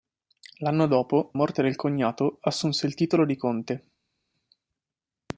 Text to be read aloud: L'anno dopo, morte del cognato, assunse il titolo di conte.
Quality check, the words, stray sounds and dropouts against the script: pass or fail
pass